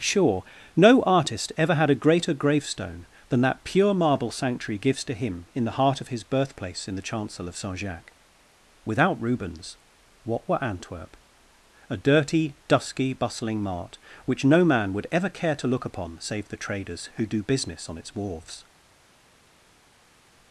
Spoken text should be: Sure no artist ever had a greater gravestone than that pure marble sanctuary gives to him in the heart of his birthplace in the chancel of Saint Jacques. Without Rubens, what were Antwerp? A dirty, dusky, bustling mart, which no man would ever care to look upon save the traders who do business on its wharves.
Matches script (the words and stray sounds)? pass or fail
pass